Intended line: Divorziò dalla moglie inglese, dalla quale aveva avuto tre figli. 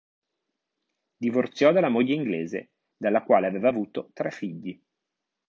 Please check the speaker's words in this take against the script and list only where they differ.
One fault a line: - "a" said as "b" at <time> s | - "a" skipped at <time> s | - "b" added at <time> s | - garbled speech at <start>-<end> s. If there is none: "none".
none